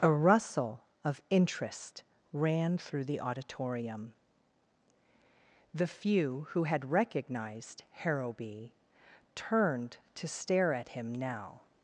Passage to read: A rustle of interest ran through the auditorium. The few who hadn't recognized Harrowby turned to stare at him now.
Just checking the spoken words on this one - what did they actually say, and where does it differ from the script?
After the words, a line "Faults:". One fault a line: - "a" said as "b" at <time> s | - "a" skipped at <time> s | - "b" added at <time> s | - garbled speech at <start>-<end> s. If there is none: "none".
A rustle of interest ran through the auditorium. The few who had recognized Harrowby turned to stare at him now.
Faults:
- "hadn't" said as "had" at 6.6 s